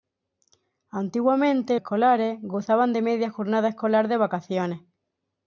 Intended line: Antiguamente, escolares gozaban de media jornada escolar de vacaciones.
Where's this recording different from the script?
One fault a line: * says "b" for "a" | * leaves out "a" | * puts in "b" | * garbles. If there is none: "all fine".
all fine